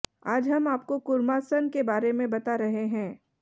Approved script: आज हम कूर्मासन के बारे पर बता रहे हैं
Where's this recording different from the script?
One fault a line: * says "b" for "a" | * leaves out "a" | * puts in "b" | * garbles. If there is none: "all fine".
* puts in "आपको"
* says "में" for "पर"